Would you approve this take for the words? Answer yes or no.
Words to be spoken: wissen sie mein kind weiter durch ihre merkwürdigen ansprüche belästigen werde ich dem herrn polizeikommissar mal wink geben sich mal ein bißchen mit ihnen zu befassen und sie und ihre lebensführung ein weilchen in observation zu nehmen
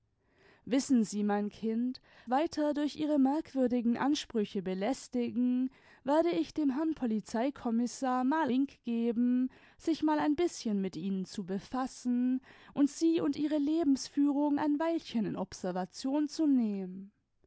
yes